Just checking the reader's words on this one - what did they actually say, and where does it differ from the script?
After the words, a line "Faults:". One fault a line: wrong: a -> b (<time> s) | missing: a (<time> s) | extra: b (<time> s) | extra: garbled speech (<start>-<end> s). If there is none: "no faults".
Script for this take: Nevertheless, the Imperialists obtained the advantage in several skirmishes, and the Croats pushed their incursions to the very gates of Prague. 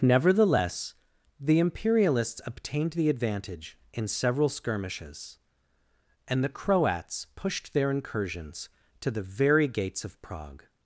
Nevertheless, the Imperialists obtained the advantage in several skirmishes, and the Croats pushed their incursions to the very gates of Prague.
Faults:
no faults